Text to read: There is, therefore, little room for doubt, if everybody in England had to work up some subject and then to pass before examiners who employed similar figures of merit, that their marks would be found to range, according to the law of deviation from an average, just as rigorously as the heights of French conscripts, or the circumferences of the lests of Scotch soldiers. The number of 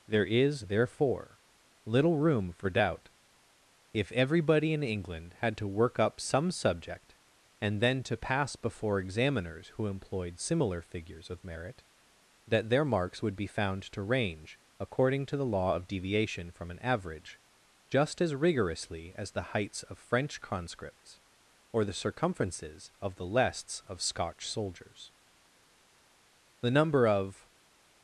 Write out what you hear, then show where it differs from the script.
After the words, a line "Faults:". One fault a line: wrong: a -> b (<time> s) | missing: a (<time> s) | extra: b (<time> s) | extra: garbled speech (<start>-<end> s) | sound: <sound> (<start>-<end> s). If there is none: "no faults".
There is, therefore, little room for doubt, if everybody in England had to work up some subject and then to pass before examiners who employed similar figures of merit, that their marks would be found to range, according to the law of deviation from an average, just as rigorously as the heights of French conscripts, or the circumferences of the lests of Scotch soldiers. The number of
Faults:
no faults